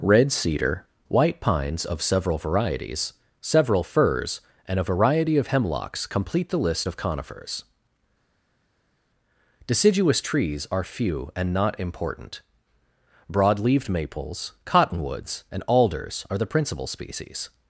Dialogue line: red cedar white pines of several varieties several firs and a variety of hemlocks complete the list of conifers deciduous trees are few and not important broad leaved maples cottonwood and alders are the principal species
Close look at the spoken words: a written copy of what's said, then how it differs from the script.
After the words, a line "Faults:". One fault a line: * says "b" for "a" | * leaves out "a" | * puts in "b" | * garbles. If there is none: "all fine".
red cedar white pines of several varieties several firs and a variety of hemlocks complete the list of conifers deciduous trees are few and not important broad leaved maples cottonwoods and alders are the principal species
Faults:
* says "cottonwoods" for "cottonwood"